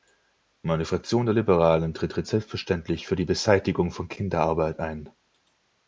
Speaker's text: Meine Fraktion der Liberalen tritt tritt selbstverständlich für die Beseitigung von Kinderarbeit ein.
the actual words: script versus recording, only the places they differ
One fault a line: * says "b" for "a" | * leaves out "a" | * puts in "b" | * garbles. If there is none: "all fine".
all fine